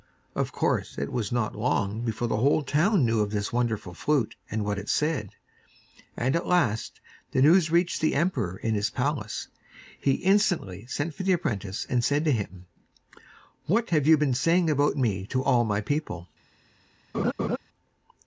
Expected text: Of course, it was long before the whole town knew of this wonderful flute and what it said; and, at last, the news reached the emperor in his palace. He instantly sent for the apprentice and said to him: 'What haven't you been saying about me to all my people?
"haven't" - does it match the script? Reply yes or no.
no